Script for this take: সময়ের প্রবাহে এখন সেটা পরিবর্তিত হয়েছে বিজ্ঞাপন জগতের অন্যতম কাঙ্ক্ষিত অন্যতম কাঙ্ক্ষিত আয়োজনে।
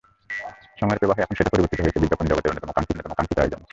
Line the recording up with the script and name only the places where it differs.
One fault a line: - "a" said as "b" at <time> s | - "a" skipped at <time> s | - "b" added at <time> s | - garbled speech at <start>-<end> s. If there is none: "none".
none